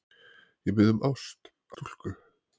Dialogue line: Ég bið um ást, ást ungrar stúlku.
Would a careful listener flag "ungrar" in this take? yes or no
yes